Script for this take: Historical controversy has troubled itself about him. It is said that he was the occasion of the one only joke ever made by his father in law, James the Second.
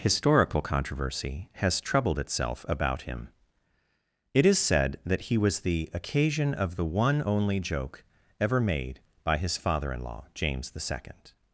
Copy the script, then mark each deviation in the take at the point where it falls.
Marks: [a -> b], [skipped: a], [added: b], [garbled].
Historical controversy has troubled itself about him. It is said that he was the occasion of the one only joke ever made by his father in law, James the Second.